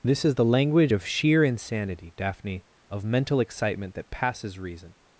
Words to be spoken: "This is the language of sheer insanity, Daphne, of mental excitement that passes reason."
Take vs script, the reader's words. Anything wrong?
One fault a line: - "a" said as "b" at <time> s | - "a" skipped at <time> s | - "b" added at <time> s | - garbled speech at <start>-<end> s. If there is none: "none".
none